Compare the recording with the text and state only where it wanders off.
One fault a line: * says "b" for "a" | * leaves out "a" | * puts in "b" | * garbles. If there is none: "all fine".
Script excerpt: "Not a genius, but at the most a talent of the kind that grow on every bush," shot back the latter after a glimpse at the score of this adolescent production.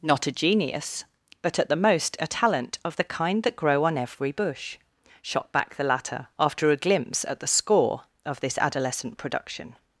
all fine